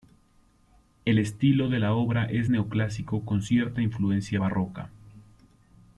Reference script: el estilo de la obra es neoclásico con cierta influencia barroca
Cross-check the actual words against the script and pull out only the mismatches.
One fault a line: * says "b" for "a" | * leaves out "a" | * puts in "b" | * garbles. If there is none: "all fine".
all fine